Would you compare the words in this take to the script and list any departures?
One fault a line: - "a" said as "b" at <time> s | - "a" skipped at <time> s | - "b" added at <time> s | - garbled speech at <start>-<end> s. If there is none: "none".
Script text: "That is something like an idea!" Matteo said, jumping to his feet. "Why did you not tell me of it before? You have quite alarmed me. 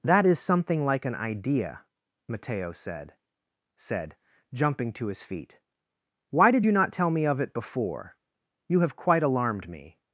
- "said" added at 3.8 s